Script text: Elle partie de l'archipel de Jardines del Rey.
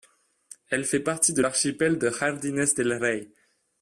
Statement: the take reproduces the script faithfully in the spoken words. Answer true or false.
false